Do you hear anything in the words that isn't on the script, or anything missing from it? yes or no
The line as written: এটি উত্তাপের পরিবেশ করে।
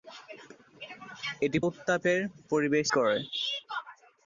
no